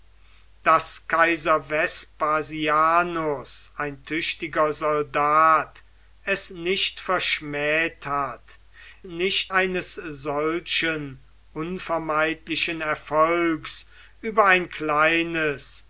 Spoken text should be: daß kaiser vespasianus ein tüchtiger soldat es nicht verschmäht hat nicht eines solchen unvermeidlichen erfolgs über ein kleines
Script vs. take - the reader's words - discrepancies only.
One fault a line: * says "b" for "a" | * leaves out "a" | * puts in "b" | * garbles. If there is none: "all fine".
all fine